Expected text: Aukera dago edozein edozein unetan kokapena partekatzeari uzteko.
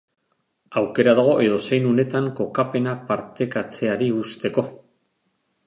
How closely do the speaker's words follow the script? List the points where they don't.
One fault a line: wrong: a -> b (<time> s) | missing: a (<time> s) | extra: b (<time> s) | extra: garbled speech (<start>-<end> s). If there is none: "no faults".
missing: edozein (1.9 s)